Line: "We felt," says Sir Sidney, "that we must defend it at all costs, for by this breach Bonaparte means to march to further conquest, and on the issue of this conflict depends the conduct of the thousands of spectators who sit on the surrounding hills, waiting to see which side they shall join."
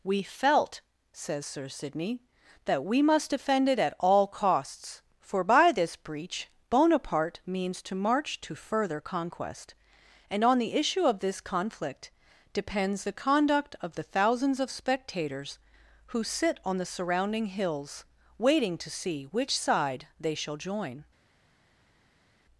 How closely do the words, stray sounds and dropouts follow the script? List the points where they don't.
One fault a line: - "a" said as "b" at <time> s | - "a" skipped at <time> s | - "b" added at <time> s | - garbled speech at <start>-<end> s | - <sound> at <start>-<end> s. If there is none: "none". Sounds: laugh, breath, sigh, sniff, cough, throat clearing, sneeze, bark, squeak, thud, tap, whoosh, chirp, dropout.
none